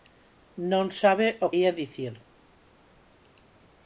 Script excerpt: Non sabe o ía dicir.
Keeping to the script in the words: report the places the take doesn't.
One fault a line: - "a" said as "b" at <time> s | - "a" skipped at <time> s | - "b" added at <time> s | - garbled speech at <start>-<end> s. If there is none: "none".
none